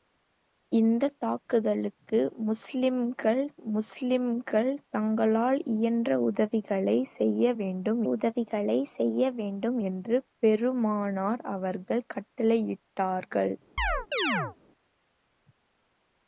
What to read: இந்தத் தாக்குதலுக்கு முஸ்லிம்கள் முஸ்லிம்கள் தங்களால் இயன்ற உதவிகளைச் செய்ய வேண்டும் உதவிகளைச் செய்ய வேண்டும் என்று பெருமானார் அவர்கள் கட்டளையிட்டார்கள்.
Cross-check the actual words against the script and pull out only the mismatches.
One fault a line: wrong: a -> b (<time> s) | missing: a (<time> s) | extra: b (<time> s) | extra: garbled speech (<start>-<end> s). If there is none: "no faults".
no faults